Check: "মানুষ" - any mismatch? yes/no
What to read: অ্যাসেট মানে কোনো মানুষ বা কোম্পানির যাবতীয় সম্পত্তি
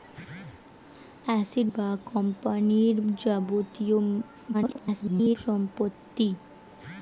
yes